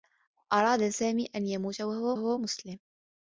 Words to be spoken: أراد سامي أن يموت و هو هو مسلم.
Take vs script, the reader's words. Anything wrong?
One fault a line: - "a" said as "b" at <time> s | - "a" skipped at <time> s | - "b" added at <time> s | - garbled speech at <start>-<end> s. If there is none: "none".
none